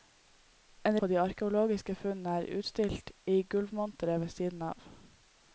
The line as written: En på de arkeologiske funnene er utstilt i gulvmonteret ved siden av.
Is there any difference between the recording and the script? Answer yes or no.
no